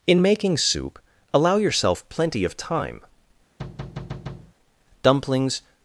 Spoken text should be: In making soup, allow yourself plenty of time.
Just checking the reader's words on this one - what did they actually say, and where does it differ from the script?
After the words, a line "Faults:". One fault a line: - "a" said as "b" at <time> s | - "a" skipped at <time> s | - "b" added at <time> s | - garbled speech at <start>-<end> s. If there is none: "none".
In making soup, allow yourself plenty of time. Dumplings
Faults:
- "Dumplings" added at 5.0 s